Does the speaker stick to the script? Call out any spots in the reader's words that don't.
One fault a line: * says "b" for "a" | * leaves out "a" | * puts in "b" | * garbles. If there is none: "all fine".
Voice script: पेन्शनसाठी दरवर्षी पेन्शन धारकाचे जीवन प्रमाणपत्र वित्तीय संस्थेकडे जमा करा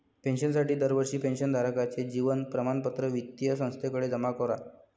all fine